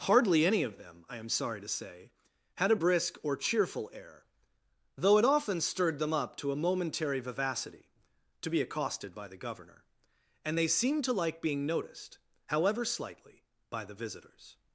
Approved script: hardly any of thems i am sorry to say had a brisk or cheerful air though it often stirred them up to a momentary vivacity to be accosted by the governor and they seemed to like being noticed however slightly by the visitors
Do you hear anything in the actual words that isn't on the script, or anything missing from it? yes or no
yes